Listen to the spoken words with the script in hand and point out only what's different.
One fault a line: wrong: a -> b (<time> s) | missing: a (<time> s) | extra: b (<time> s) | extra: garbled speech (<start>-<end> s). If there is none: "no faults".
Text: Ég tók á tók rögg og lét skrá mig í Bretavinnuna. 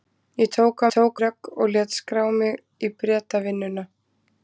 no faults